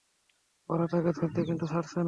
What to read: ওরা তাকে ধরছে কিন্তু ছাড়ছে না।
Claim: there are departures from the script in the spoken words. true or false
false